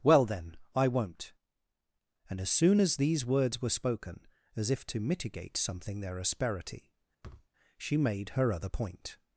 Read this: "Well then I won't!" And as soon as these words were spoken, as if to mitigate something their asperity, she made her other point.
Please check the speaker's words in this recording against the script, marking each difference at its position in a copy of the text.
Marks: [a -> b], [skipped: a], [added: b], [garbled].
"Well then I won't!" And as soon as these words were spoken, as if to mitigate something their asperity, she made her other point.